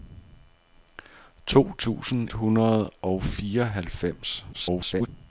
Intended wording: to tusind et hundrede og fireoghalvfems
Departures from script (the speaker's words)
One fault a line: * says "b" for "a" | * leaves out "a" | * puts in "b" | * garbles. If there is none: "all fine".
* leaves out "et"
* garbles